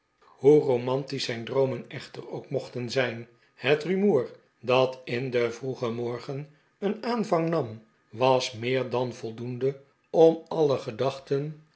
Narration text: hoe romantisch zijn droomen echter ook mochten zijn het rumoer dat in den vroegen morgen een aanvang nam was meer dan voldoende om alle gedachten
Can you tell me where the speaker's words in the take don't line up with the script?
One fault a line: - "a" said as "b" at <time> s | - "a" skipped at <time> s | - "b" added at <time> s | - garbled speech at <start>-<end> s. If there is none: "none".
none